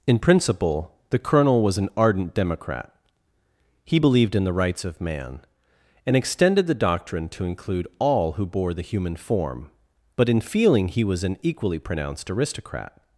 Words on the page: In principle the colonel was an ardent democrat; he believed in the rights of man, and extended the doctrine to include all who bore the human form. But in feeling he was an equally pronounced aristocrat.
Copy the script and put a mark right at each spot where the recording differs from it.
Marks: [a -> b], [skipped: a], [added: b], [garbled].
In principle the colonel was an ardent democrat; he believed in the rights of man, and extended the doctrine to include all who bore the human form. But in feeling he was an equally pronounced aristocrat.